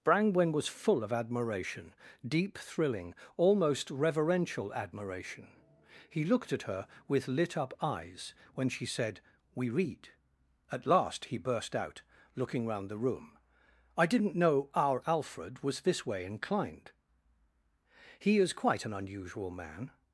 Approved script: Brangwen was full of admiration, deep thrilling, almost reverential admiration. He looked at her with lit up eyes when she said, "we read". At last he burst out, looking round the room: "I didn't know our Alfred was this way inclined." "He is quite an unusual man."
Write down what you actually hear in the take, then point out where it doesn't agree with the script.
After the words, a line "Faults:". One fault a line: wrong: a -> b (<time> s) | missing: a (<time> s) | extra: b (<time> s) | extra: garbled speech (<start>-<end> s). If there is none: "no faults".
Brangwen was full of admiration, deep thrilling, almost reverential admiration. He looked at her with lit up eyes when she said, "we read". At last he burst out, looking round the room: "I didn't know our Alfred was this way inclined." "He is quite an unusual man."
Faults:
no faults